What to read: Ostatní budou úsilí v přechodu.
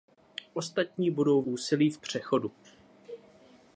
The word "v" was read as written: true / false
true